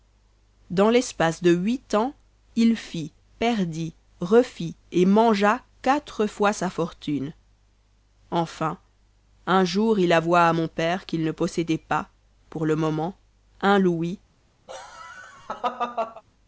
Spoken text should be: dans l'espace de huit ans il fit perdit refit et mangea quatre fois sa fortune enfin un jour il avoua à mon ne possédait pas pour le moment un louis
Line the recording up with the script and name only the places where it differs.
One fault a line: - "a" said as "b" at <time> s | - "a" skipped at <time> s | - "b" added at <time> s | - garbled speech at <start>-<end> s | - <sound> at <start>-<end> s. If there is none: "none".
- "père qu'il" added at 10.7 s
- laugh at 14.7-16.2 s